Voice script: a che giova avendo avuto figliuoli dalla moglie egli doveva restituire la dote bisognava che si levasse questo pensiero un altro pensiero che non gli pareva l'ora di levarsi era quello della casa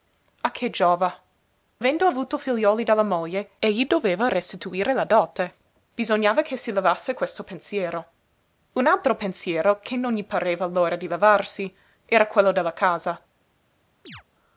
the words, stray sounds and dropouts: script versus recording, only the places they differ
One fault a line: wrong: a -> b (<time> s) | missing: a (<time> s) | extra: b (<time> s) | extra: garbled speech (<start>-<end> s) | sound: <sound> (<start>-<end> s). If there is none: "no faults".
sound: chirp (14.0-14.2 s)